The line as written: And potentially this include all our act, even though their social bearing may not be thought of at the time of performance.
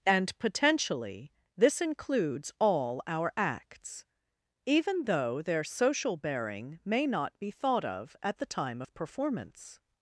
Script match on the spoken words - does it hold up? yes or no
no